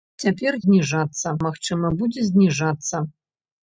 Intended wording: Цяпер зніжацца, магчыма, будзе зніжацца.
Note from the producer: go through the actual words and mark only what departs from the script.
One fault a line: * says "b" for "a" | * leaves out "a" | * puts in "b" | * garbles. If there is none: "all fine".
all fine